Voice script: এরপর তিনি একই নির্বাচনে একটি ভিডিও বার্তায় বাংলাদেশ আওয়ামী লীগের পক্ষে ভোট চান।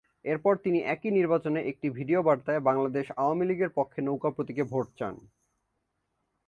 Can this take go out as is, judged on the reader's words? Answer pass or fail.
fail